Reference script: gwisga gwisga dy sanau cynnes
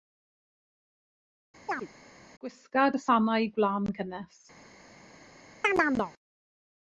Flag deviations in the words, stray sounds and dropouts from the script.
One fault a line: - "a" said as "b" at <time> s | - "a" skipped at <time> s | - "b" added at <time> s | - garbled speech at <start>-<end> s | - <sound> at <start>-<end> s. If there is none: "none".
- chirp at 1.7-1.9 s
- "gwisga" skipped at 2.9 s
- "gwlân" added at 3.6 s
- chirp at 5.6-6.1 s